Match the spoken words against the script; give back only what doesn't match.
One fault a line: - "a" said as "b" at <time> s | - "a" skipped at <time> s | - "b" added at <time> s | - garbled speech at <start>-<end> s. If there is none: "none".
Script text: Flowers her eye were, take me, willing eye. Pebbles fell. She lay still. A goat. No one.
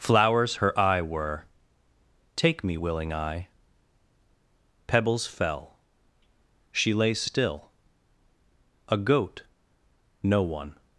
none